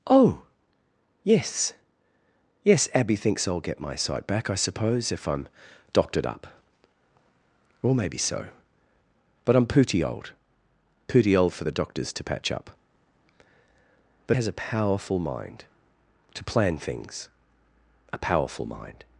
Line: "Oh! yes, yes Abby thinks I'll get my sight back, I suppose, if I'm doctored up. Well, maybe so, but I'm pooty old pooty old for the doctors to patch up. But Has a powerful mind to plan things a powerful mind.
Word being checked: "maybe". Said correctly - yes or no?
yes